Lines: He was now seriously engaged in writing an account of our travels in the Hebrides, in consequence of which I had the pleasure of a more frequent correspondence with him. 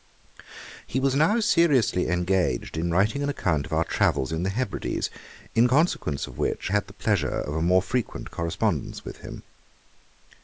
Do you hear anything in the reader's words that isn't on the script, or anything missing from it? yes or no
yes